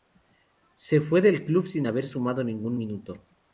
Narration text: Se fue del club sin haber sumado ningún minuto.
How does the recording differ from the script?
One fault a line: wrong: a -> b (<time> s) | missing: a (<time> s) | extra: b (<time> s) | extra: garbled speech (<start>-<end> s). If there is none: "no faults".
no faults